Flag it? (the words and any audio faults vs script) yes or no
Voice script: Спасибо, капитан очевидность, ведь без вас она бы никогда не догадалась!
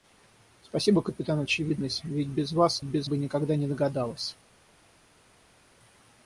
yes